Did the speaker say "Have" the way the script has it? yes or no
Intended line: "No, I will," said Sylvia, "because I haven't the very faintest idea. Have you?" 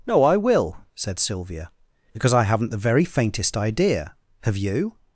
yes